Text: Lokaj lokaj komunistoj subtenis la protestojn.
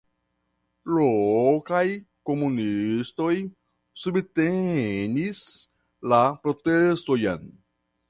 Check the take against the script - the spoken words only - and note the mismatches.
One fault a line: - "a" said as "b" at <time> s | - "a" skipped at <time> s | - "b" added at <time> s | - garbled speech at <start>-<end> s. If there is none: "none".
- "lokaj" skipped at 1.8 s